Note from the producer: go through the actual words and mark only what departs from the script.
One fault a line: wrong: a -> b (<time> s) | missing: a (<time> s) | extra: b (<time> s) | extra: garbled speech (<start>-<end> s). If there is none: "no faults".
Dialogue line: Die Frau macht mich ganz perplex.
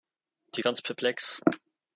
missing: Frau macht mich (0.6 s)